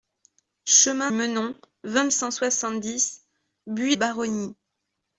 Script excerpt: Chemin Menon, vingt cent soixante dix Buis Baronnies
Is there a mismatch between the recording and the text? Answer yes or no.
no